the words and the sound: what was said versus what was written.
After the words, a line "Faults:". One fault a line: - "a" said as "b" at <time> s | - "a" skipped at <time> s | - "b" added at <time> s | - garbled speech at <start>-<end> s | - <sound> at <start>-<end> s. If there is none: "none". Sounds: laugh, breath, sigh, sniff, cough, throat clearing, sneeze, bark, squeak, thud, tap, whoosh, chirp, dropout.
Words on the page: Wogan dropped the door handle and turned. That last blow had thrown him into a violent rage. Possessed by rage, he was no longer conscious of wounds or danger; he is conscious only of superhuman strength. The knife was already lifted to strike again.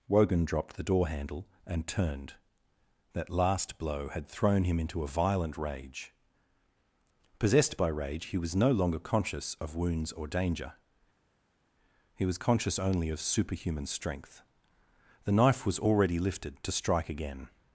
Wogan dropped the door handle and turned. That last blow had thrown him into a violent rage. Possessed by rage, he was no longer conscious of wounds or danger; he was conscious only of superhuman strength. The knife was already lifted to strike again.
Faults:
- "is" said as "was" at 12.2 s